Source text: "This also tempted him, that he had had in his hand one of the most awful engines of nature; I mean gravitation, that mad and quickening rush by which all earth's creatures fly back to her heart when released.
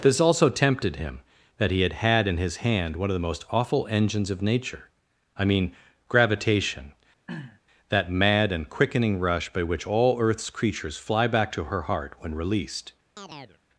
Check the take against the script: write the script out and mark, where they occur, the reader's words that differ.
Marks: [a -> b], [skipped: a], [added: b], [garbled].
"This also tempted him, that he had had in his hand one of the most awful engines of nature; I mean gravitation, that mad and quickening rush by which all earth's creatures fly back to her heart when released.